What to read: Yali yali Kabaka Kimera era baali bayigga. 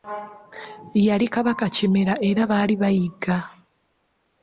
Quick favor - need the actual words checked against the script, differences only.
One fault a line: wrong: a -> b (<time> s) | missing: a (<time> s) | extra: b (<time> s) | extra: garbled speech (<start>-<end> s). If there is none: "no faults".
missing: yali (1.2 s)